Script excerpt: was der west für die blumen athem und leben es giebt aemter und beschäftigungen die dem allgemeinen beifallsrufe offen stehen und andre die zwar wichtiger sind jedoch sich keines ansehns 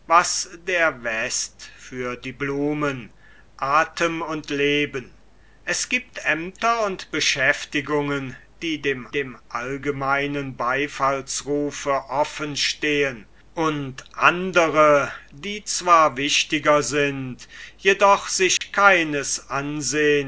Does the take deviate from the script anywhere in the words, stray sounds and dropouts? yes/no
yes